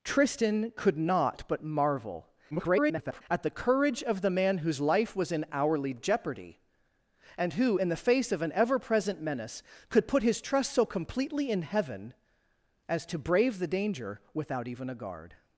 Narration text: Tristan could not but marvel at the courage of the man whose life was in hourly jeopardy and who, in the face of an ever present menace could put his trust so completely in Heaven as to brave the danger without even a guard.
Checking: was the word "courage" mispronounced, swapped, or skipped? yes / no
no